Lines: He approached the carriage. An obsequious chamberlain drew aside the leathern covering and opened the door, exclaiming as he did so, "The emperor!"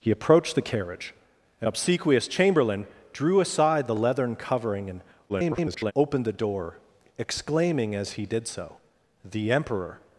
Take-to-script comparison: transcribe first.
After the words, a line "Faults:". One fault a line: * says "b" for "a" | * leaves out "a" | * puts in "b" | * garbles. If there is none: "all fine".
He approached the carriage. An obsequious chamberlain drew aside the leathern covering and [garbled] opened the door, exclaiming as he did so, "The emperor!"
Faults:
* garbles